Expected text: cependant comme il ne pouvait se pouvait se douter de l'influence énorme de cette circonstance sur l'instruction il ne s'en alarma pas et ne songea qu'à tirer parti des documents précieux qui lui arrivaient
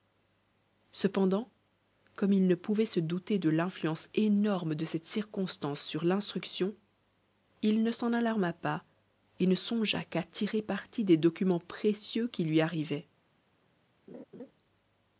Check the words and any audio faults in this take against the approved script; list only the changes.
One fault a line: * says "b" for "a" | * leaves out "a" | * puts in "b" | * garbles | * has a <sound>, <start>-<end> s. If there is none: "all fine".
* leaves out "pouvait se"
* has a laugh, 14.1-14.5 s